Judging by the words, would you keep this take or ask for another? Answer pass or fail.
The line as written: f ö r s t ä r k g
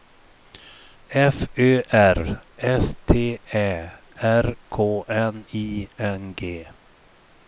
fail